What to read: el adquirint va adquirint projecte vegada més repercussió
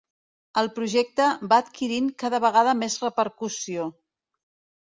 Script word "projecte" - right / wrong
wrong